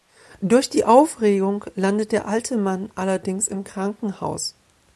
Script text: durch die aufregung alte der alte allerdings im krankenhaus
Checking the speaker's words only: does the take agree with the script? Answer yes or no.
no